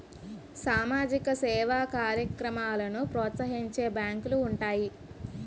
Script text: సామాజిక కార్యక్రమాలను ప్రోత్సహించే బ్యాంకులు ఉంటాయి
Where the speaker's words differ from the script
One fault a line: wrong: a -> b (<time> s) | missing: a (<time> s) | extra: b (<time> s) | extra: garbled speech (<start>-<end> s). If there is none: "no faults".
extra: సేవా (1.4 s)